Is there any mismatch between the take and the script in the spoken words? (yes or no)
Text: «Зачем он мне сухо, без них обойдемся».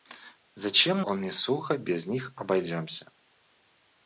no